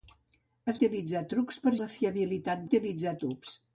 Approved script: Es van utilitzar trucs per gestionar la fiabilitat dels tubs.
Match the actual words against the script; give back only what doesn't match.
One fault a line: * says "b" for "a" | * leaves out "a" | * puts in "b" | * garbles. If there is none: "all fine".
* leaves out "van"
* leaves out "gestionar"
* says "utilitzar" for "dels"